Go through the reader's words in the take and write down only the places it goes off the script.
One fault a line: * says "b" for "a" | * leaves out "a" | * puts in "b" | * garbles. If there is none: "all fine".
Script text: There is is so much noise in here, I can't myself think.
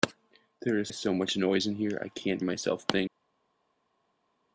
all fine